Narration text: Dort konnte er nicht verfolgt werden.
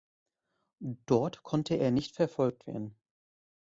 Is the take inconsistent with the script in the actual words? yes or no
no